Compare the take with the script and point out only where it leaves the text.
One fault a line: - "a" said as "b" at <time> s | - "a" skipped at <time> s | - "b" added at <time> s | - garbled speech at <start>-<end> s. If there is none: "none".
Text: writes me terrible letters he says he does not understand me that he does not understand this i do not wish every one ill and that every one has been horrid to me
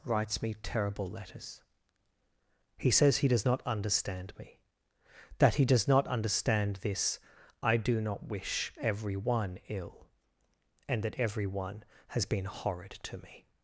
none